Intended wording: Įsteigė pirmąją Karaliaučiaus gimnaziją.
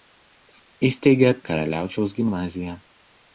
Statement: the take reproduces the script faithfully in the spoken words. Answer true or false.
false